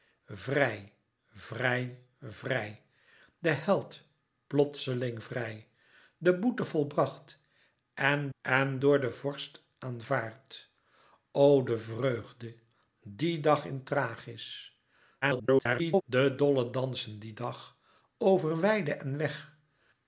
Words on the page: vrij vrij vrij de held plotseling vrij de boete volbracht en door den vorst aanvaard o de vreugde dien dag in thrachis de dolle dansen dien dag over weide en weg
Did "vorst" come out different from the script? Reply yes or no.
no